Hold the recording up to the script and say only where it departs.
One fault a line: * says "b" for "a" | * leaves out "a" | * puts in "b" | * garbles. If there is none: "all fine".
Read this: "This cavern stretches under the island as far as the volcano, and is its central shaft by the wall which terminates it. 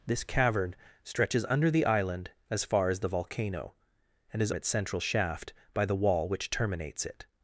all fine